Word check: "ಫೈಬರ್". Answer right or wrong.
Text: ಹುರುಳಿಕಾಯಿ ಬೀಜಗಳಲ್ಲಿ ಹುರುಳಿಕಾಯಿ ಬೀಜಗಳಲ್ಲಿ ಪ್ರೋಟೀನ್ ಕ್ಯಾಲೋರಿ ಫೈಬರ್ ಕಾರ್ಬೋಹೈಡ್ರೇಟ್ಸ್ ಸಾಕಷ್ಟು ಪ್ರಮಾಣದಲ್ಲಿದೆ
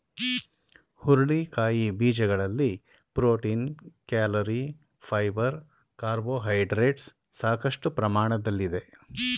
right